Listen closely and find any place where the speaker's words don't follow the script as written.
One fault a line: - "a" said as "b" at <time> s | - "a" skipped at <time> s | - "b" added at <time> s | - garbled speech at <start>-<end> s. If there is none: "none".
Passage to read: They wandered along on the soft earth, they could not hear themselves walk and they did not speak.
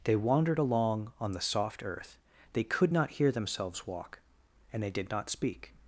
none